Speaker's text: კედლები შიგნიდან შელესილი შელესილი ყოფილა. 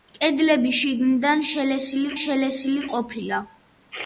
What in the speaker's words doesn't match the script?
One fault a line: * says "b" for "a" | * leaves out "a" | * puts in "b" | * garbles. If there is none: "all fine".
all fine